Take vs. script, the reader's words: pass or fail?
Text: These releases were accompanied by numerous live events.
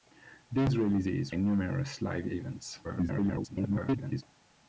fail